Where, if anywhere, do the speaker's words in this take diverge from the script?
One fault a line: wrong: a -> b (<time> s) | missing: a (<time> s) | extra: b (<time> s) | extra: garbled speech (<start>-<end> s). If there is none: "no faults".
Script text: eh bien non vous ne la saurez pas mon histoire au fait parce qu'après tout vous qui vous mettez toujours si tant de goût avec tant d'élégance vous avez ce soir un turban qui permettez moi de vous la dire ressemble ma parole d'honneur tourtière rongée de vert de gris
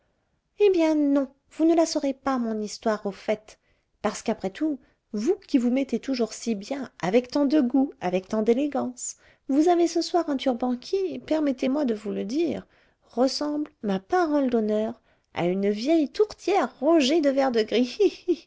extra: bien avec (6.5 s)
wrong: la -> le (12.1 s)
extra: à une vieille (15.3 s)